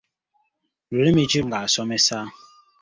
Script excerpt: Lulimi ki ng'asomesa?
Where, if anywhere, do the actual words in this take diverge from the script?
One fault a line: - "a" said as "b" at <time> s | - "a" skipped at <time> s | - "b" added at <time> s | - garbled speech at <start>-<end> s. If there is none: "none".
none